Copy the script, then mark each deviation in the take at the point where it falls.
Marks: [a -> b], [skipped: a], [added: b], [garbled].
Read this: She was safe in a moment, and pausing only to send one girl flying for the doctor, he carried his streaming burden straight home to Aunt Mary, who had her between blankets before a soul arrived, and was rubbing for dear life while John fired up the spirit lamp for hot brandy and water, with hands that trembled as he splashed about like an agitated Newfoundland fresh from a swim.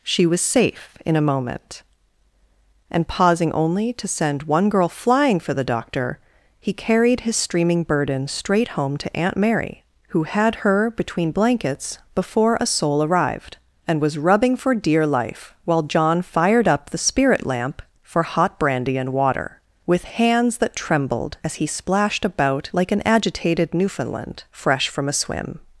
She was safe in a moment, and pausing only to send one girl flying for the doctor, he carried his streaming burden straight home to Aunt Mary, who had her between blankets before a soul arrived, and was rubbing for dear life while John fired up the spirit lamp for hot brandy and water, with hands that trembled as he splashed about like an agitated Newfoundland fresh from a swim.